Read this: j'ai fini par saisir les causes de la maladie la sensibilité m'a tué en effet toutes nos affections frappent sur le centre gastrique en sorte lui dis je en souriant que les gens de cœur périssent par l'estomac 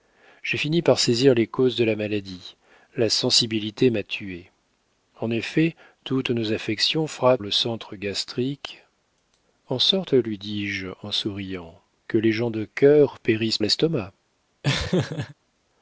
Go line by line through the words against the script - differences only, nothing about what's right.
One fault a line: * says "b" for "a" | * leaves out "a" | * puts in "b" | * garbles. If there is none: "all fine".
* leaves out "sur"
* leaves out "par"